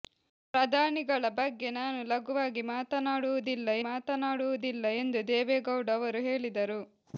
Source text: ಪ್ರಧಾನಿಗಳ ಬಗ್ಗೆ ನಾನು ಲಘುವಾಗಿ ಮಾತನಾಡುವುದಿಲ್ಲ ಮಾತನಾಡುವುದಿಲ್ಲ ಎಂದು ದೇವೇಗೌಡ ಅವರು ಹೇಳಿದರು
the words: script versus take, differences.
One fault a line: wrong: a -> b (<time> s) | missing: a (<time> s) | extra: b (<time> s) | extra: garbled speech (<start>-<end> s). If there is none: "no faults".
no faults